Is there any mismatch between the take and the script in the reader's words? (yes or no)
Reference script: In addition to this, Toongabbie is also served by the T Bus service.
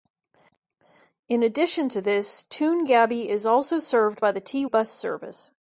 no